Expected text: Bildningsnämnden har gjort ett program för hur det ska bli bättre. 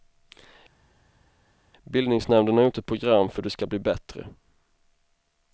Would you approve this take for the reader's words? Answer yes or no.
yes